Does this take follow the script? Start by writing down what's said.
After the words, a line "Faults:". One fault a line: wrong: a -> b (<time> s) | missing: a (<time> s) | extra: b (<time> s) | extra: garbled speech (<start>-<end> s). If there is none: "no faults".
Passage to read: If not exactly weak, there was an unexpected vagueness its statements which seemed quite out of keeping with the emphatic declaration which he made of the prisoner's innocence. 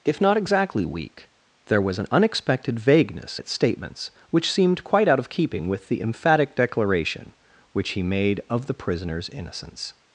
If not exactly weak, there was an unexpected vagueness its statements which seemed quite out of keeping with the emphatic declaration which he made of the prisoner's innocence.
Faults:
no faults